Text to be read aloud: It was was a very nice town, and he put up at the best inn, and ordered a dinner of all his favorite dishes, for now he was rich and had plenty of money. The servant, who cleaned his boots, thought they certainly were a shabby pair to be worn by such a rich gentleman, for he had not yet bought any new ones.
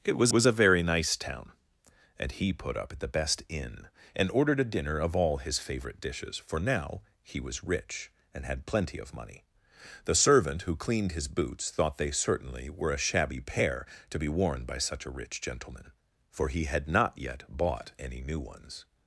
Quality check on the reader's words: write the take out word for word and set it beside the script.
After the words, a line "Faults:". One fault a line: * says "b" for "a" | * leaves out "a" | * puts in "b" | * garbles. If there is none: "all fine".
It was was a very nice town, and he put up at the best inn, and ordered a dinner of all his favorite dishes, for now he was rich and had plenty of money. The servant, who cleaned his boots, thought they certainly were a shabby pair to be worn by such a rich gentleman, for he had not yet bought any new ones.
Faults:
all fine